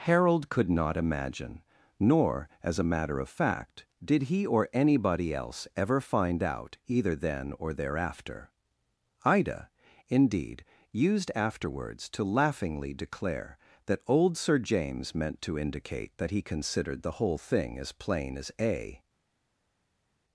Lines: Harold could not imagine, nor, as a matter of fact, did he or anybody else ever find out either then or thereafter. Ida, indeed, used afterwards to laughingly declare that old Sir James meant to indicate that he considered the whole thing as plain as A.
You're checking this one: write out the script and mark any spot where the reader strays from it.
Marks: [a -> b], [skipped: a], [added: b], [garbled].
Harold could not imagine, nor, as a matter of fact, did he or anybody else ever find out either then or thereafter. Ida, indeed, used afterwards to laughingly declare that old Sir James meant to indicate that he considered the whole thing as plain as A.